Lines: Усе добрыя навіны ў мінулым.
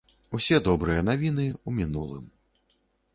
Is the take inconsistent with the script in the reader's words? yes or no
no